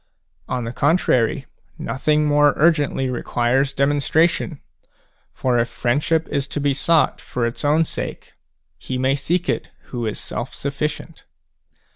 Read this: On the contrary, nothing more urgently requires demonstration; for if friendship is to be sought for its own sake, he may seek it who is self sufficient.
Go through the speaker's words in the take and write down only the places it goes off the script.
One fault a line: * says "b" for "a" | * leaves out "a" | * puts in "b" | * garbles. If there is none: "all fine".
all fine